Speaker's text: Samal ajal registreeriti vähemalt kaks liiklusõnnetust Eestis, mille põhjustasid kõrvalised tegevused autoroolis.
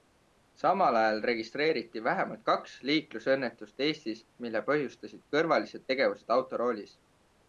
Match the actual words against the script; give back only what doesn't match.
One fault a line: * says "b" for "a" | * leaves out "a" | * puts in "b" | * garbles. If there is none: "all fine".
all fine